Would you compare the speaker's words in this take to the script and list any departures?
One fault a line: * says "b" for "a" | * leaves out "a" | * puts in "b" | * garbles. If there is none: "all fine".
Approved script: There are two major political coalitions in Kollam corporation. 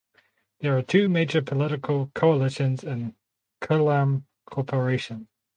all fine